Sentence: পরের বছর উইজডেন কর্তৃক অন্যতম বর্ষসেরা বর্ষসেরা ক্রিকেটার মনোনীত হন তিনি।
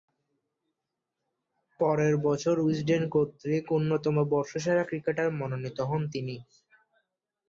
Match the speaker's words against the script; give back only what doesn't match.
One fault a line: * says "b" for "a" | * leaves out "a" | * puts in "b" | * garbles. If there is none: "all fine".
* leaves out "বর্ষসেরা"